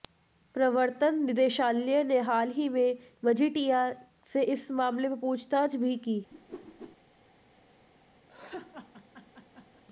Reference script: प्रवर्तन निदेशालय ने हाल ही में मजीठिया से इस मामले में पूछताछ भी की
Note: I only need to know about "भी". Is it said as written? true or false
true